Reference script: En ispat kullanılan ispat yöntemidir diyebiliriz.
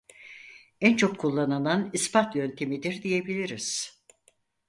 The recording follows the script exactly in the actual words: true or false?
false